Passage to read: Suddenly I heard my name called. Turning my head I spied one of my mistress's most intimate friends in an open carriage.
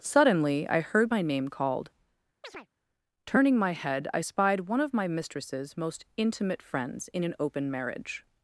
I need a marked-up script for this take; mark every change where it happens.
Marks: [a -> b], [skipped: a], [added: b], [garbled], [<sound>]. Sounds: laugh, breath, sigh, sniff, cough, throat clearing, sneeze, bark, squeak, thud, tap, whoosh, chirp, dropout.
Suddenly I heard my name called. [chirp] Turning my head I spied one of my mistress's most intimate friends in an open [carriage. -> marriage]